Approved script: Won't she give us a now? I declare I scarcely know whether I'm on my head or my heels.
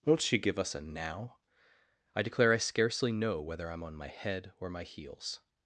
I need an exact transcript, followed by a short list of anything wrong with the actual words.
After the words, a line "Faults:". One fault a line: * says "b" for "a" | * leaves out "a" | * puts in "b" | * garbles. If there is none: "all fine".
Won't she give us a now? I declare I scarcely know whether I'm on my head or my heels.
Faults:
all fine